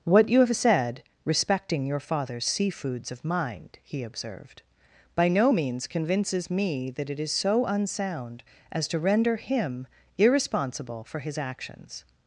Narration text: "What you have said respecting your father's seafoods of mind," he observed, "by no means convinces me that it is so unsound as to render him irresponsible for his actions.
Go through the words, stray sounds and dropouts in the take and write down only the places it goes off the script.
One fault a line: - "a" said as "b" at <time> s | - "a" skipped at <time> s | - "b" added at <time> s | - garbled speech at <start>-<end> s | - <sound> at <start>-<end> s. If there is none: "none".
none